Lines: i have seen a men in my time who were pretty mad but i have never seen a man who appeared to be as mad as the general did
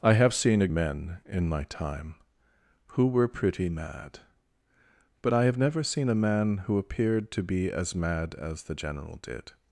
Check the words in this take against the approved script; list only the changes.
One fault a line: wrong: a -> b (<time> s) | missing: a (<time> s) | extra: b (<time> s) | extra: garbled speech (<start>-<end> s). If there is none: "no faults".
no faults